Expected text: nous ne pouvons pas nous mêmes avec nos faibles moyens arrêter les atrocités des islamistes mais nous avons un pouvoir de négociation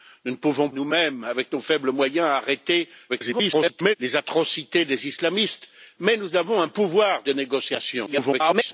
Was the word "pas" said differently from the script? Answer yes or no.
yes